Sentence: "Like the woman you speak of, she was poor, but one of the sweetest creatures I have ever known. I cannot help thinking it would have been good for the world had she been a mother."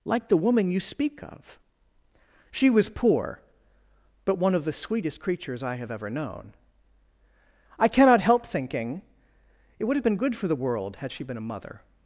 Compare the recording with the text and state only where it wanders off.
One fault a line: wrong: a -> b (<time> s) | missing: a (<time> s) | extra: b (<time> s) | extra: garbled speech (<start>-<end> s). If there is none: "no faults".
no faults